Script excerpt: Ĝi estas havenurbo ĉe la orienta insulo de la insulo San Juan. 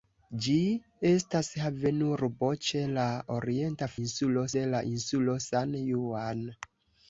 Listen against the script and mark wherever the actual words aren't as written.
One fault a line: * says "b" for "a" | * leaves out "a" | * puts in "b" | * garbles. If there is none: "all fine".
all fine